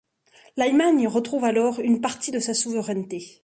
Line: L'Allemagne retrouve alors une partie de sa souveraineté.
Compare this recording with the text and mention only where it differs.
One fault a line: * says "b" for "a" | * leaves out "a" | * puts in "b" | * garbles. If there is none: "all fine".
all fine